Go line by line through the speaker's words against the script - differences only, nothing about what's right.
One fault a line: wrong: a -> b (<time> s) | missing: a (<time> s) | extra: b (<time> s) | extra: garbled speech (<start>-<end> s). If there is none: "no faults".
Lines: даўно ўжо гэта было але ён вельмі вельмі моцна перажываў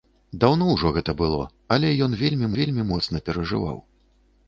no faults